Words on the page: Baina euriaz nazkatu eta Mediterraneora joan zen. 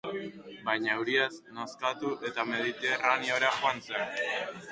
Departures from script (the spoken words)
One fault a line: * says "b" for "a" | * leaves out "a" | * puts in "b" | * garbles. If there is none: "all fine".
all fine